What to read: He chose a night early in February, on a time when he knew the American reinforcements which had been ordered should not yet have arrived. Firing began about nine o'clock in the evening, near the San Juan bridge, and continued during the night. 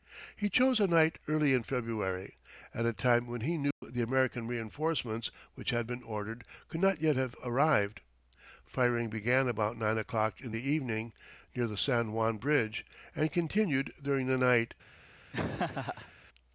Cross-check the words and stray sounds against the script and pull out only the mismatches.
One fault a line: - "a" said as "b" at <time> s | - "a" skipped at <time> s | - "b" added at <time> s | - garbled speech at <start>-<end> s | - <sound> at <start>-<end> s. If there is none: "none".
- "on" said as "at" at 2.7 s
- dropout at 3.7-3.8 s
- "should" said as "could" at 6.7 s
- laugh at 15.3-16.1 s